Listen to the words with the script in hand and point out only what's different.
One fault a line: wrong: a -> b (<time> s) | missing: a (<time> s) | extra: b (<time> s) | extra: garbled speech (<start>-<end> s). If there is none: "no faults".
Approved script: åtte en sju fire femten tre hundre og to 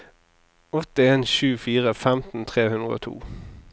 no faults